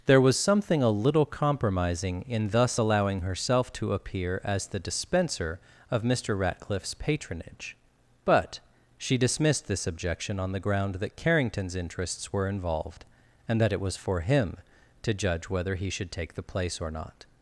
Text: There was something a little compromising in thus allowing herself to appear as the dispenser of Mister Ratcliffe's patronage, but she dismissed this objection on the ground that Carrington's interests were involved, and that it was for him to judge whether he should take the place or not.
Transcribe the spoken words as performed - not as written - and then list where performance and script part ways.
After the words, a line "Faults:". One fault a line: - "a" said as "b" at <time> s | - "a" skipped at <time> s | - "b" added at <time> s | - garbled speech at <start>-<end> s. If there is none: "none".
There was something a little compromising in thus allowing herself to appear as the dispenser of Mister Ratcliffe's patronage, but she dismissed this objection on the ground that Carrington's interests were involved, and that it was for him to judge whether he should take the place or not.
Faults:
none